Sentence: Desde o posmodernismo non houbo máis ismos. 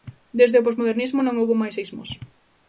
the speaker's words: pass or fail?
pass